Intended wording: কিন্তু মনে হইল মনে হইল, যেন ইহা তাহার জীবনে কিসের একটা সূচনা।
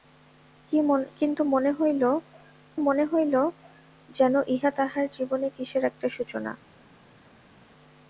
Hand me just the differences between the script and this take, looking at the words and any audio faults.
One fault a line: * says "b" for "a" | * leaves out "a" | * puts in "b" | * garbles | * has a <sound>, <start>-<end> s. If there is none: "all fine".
all fine